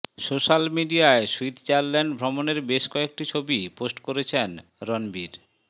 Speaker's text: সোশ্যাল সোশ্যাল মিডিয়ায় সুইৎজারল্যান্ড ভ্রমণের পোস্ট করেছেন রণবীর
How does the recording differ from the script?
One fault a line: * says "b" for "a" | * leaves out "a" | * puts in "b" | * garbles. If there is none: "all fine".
* leaves out "সোশ্যাল"
* puts in "বেশ কয়েকটি ছবি"